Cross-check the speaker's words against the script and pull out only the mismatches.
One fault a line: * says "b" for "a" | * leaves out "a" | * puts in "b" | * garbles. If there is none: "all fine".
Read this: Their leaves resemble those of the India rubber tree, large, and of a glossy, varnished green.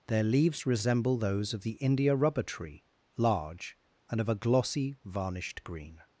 all fine